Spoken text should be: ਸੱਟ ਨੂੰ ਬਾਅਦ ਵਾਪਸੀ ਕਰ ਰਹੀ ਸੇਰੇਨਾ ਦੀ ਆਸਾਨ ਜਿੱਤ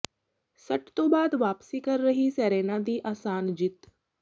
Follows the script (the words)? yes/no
no